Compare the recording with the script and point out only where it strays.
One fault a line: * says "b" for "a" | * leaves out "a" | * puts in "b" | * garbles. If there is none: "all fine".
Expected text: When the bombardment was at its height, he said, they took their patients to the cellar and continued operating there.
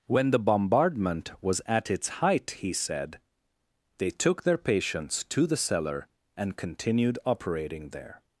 all fine